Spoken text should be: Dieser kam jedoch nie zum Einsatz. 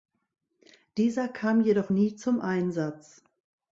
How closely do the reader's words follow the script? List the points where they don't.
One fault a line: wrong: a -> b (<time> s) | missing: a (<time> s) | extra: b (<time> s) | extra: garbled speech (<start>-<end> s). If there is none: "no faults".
no faults